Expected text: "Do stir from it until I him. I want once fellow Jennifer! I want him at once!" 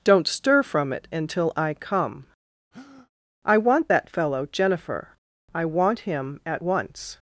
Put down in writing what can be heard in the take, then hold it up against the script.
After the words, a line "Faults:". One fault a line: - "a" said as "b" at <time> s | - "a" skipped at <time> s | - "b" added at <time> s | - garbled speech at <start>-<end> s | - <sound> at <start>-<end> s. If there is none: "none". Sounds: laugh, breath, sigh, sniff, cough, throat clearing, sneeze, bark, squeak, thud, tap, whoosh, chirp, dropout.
"Don't stir from it until I come. I want that fellow Jennifer! I want him at once!"
Faults:
- "Do" said as "Don't" at 0.0 s
- "him" said as "come" at 1.8 s
- breath at 2.7-3.1 s
- "once" said as "that" at 3.9 s